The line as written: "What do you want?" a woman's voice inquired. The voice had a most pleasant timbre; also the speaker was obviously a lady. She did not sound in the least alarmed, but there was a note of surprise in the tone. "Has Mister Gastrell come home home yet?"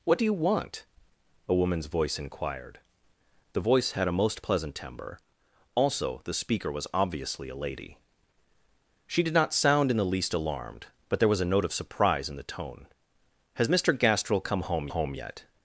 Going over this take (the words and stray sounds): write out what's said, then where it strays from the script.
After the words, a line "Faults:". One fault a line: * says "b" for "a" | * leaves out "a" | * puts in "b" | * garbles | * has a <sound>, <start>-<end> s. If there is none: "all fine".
"What do you want?" a woman's voice inquired. The voice had a most pleasant timbre; also the speaker was obviously a lady. She did not sound in the least alarmed, but there was a note of surprise in the tone. "Has Mister Gastrell come home home yet?"
Faults:
all fine